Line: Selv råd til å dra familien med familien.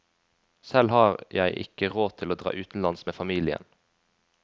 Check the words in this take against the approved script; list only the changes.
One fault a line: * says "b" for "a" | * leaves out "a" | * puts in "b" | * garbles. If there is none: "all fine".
* puts in "har jeg ikke"
* says "utenlands" for "familien"